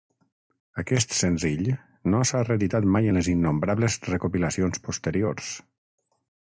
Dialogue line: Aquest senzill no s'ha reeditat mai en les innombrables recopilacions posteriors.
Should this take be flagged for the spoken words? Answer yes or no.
no